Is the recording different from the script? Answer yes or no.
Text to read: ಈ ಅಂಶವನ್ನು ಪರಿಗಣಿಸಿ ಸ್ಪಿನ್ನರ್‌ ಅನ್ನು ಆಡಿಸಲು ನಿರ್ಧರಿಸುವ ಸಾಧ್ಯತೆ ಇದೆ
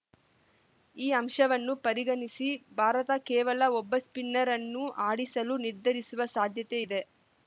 yes